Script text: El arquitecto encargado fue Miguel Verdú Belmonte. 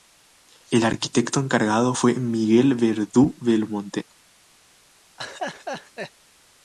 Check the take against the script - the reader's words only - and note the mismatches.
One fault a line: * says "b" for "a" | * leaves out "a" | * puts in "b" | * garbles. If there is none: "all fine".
all fine